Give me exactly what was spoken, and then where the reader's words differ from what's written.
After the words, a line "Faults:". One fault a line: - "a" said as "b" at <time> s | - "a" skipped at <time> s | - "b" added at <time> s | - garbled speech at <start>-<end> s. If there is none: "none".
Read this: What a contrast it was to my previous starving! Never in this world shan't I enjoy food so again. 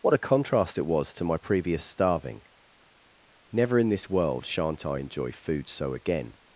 What a contrast it was to my previous starving! Never in this world shan't I enjoy food so again.
Faults:
none